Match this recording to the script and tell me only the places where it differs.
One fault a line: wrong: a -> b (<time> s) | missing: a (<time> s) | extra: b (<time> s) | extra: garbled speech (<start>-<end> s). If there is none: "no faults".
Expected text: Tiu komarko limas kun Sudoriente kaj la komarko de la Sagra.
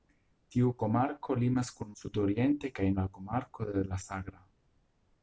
no faults